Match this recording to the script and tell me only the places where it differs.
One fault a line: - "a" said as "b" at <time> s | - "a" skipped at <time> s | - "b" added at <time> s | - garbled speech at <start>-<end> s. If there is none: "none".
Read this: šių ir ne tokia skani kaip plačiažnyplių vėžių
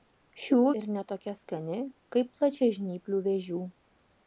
none